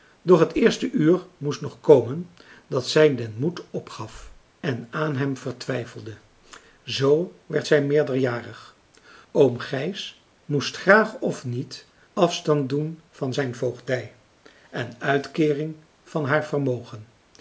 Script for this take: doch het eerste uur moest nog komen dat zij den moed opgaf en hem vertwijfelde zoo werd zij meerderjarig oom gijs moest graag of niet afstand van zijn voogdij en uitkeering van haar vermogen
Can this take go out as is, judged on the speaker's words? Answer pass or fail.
fail